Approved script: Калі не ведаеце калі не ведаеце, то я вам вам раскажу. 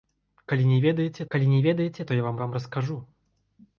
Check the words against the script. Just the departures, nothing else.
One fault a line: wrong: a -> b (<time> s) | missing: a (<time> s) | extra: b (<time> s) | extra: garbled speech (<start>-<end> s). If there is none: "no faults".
no faults